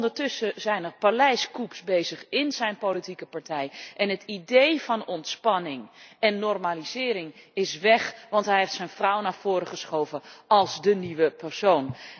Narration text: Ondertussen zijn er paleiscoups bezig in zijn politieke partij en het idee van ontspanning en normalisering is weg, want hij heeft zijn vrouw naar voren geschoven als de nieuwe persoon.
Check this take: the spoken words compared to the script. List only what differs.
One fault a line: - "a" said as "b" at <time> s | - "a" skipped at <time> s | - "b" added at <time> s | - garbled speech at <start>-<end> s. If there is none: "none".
none